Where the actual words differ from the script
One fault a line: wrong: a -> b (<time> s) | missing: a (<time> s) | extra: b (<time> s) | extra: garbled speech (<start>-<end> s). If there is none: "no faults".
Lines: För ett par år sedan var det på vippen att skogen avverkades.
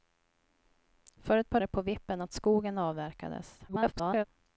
missing: år sedan var (1.6 s)
extra: garbled speech (3.7-4.2 s)